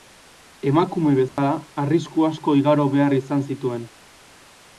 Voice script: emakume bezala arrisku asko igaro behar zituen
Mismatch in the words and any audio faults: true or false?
true